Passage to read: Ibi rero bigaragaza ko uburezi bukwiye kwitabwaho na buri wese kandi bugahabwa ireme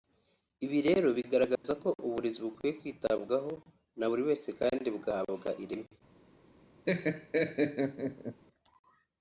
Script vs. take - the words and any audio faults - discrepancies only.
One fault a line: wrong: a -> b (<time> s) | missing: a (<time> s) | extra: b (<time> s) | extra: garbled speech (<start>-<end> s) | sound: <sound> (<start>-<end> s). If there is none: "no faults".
sound: dropout (1.6-1.6 s)
sound: laugh (6.9-8.4 s)